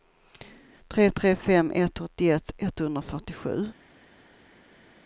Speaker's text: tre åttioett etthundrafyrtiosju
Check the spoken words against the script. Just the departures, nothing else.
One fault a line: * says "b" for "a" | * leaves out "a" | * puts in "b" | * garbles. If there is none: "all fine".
* puts in "tre fem ett"